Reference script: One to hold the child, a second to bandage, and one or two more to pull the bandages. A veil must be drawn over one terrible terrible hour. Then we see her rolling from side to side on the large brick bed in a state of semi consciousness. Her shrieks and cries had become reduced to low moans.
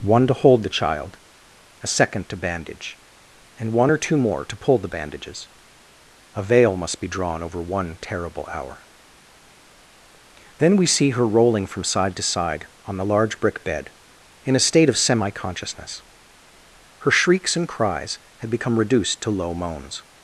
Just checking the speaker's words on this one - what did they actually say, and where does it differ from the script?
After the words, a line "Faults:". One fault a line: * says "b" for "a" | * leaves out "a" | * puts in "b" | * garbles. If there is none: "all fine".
One to hold the child, a second to bandage, and one or two more to pull the bandages. A veil must be drawn over one terrible hour. Then we see her rolling from side to side on the large brick bed in a state of semi consciousness. Her shrieks and cries had become reduced to low moans.
Faults:
* leaves out "terrible"